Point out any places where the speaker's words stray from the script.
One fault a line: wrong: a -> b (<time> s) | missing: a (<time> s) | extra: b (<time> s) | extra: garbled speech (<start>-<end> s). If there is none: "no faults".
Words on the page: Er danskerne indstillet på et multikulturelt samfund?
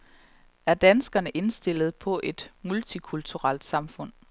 no faults